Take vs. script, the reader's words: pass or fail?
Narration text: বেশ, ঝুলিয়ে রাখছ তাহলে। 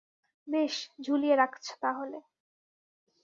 pass